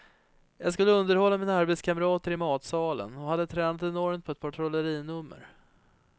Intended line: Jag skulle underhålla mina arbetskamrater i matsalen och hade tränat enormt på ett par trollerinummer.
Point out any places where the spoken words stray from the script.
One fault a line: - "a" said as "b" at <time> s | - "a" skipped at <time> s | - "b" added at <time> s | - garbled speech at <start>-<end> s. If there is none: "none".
none